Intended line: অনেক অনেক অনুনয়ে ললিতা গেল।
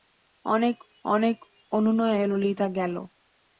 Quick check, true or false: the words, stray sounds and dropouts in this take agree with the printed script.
true